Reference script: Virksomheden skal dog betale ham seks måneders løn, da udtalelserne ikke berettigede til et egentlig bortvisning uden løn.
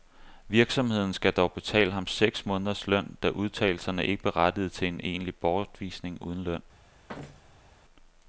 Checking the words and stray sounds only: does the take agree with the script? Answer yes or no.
no